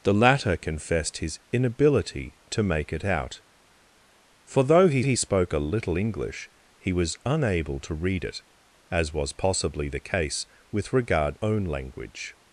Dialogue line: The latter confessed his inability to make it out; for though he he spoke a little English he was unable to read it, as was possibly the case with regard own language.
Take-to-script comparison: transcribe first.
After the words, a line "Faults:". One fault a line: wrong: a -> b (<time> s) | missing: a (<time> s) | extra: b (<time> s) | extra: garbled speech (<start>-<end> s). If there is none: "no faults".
The latter confessed his inability to make it out; for though he he spoke a little English he was unable to read it, as was possibly the case with regard own language.
Faults:
no faults